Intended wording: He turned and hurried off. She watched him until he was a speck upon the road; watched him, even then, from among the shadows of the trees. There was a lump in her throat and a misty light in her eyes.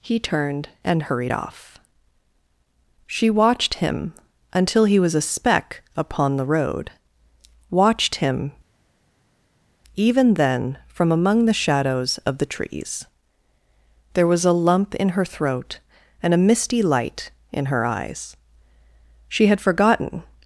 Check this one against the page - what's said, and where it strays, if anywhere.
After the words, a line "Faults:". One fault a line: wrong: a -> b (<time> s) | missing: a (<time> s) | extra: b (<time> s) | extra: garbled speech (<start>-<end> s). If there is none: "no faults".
He turned and hurried off. She watched him until he was a speck upon the road; watched him, even then, from among the shadows of the trees. There was a lump in her throat and a misty light in her eyes. She had forgotten
Faults:
extra: She had forgotten (19.3 s)